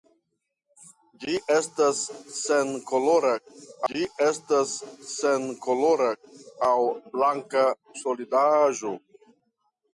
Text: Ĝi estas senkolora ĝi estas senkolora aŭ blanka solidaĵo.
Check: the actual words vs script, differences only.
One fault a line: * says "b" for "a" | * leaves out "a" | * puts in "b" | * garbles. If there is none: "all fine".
all fine